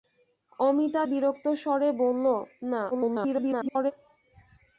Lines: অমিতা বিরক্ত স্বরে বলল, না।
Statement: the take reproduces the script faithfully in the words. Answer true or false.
false